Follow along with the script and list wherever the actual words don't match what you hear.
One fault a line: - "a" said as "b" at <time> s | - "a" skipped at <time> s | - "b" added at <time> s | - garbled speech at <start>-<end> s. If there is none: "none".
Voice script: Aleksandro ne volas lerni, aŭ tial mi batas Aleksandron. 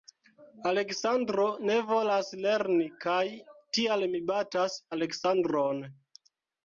- "aŭ" said as "kaj" at 3.0 s